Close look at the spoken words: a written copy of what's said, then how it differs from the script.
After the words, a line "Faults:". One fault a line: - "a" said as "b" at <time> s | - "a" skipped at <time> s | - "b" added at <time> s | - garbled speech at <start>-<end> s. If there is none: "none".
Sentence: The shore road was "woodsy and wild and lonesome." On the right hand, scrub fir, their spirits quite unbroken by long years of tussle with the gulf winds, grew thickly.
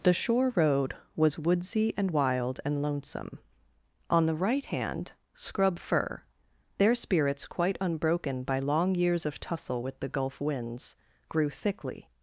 The shore road was "woodsy and wild and lonesome." On the right hand, scrub fir, their spirits quite unbroken by long years of tussle with the gulf winds, grew thickly.
Faults:
none